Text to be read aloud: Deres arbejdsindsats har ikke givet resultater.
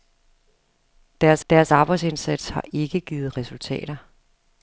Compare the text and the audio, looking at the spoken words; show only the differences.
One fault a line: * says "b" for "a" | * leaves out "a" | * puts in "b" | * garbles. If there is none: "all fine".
* puts in "deres"